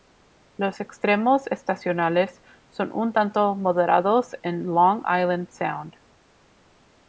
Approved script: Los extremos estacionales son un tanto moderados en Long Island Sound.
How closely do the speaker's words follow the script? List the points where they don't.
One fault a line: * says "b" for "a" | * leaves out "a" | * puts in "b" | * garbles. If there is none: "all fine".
all fine